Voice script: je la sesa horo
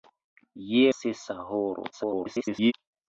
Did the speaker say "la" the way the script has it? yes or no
no